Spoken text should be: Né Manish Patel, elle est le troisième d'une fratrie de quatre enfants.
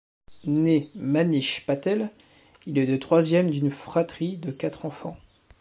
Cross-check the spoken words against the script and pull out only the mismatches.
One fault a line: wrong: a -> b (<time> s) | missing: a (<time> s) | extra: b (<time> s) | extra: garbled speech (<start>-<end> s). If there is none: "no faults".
wrong: elle -> il (2.6 s)